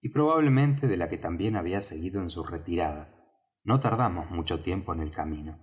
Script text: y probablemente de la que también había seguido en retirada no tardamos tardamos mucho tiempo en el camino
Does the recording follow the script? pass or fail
fail